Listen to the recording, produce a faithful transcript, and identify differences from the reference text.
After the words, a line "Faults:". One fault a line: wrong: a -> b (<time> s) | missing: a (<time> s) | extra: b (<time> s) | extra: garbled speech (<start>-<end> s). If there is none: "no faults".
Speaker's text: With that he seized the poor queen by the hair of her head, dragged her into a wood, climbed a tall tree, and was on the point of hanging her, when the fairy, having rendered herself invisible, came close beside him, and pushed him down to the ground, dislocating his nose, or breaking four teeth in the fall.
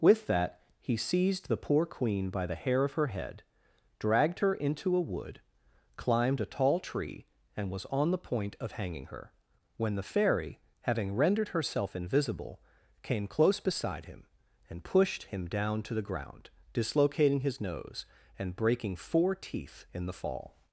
With that he seized the poor queen by the hair of her head, dragged her into a wood, climbed a tall tree, and was on the point of hanging her, when the fairy, having rendered herself invisible, came close beside him, and pushed him down to the ground, dislocating his nose, and breaking four teeth in the fall.
Faults:
wrong: or -> and (18.4 s)